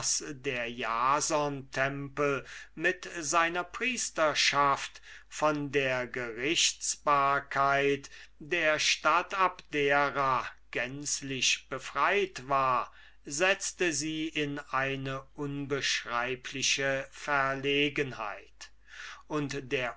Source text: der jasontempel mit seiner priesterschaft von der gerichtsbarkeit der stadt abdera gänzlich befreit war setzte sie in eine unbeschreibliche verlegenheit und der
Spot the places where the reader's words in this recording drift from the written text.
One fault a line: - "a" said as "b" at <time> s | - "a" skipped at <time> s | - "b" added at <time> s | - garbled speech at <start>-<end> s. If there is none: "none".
none